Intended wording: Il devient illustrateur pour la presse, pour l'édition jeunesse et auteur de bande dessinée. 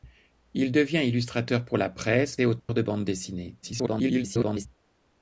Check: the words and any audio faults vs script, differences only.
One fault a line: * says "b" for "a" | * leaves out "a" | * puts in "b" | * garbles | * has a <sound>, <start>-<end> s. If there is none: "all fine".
* leaves out "pour l'édition jeunesse"
* has a dropout, 2.6-2.7 s
* garbles